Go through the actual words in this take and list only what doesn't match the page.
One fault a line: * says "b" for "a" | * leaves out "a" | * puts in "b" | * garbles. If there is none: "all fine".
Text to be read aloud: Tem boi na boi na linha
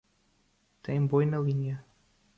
* leaves out "boi na"